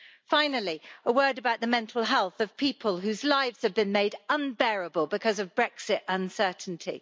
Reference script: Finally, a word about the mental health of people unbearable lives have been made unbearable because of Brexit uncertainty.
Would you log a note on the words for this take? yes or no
yes